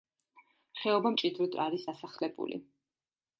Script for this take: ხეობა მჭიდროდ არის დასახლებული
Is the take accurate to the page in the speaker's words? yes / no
yes